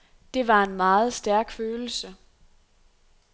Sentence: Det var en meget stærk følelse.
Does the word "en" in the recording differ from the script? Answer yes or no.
no